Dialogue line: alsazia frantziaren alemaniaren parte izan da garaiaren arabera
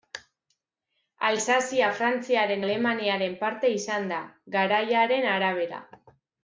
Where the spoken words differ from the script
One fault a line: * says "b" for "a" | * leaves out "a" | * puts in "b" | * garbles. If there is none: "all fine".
all fine